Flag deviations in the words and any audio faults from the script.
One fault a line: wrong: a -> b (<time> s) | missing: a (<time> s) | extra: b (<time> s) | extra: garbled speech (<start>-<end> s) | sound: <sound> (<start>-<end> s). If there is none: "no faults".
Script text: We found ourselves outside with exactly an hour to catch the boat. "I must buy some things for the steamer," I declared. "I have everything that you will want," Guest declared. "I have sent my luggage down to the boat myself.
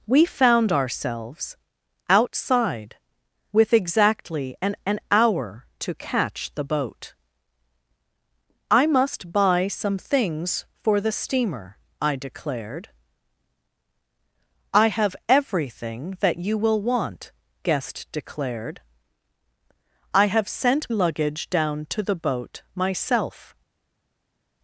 extra: an (4.9 s)
missing: my (20.9 s)